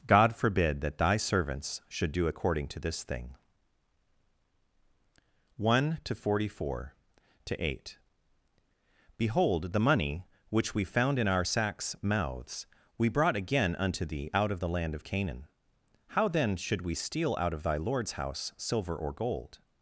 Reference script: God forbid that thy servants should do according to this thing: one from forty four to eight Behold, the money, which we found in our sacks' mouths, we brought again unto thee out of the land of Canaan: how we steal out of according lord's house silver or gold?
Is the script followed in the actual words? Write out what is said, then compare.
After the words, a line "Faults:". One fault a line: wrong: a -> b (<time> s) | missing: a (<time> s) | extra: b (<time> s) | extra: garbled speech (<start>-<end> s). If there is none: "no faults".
God forbid that thy servants should do according to this thing: one to forty four to eight Behold, the money, which we found in our sacks' mouths, we brought again unto thee out of the land of Canaan: how then should we steal out of thy lord's house silver or gold?
Faults:
wrong: from -> to (6.0 s)
extra: then should (16.3 s)
wrong: according -> thy (17.6 s)